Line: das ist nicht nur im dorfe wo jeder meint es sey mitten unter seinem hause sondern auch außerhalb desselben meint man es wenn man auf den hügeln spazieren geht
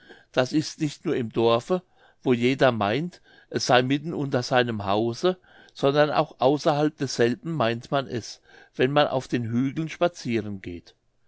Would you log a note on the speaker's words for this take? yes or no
no